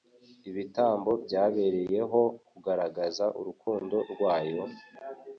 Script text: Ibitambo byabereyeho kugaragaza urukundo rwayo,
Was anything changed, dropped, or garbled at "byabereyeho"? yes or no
no